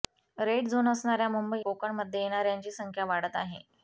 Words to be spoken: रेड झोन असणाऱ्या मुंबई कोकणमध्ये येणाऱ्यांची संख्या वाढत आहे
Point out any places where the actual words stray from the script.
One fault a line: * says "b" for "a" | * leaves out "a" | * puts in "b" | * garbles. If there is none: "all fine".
all fine